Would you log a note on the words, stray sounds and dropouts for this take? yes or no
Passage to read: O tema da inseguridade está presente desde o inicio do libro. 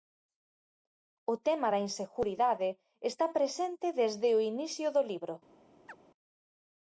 yes